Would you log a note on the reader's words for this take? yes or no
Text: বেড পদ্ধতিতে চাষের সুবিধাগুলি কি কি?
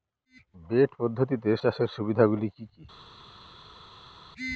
no